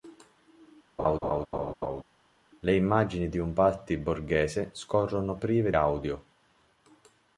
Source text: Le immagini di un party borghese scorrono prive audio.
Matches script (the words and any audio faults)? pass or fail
fail